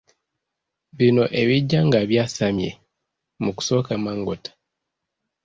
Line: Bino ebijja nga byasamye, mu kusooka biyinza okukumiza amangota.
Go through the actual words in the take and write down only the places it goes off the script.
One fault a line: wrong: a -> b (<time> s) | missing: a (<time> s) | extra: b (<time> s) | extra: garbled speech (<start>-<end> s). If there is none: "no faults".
missing: biyinza okukumiza (3.9 s)